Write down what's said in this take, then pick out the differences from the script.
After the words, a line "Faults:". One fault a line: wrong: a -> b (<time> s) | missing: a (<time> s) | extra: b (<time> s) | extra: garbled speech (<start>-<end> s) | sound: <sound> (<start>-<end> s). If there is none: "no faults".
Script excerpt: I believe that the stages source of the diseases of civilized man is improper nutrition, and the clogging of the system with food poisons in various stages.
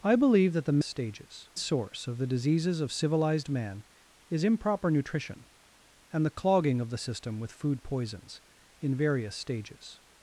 I believe that the stages source of the diseases of civilized man is improper nutrition, and the clogging of the system with food poisons in various stages.
Faults:
no faults